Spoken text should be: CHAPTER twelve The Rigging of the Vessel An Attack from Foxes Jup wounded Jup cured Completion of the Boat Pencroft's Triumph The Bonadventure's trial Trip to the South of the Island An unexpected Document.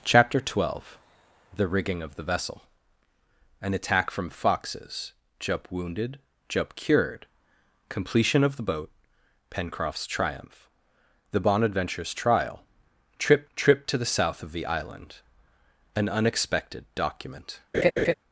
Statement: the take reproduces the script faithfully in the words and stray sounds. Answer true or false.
false